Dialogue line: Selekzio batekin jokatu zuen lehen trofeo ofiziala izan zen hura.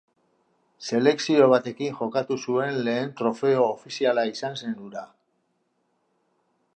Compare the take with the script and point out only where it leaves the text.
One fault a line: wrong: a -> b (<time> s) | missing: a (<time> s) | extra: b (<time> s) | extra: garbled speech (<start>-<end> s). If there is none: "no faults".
no faults